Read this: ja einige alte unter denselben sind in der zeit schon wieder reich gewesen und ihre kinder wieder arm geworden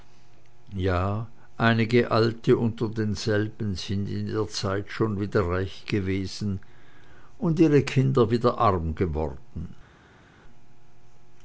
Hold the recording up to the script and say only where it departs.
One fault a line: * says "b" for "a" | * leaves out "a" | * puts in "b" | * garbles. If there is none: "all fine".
all fine